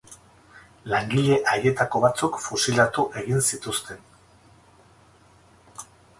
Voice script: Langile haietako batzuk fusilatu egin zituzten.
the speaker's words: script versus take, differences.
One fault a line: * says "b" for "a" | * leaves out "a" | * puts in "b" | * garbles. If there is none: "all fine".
all fine